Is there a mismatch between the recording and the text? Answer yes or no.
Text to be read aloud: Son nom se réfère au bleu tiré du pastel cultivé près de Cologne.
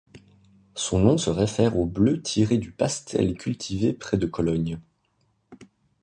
no